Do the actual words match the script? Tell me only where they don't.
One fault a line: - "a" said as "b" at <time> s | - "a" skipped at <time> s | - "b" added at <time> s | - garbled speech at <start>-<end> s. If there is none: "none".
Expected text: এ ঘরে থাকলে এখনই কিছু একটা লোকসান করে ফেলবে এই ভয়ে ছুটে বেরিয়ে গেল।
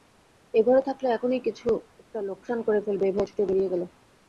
none